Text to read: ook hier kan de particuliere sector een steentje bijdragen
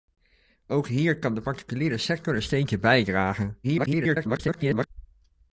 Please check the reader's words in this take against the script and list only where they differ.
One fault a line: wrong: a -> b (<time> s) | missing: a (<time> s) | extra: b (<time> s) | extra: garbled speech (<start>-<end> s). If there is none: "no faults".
extra: garbled speech (3.6-4.9 s)